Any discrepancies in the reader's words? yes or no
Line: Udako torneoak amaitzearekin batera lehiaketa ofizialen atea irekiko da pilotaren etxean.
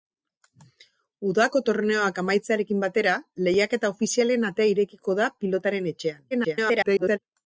yes